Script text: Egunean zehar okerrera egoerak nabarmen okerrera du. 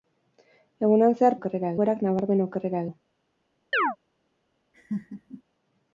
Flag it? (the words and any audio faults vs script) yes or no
yes